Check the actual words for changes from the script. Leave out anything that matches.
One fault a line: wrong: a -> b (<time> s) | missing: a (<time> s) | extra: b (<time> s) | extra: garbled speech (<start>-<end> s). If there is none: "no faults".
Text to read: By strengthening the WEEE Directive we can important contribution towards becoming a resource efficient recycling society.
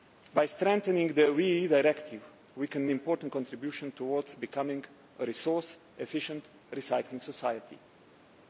no faults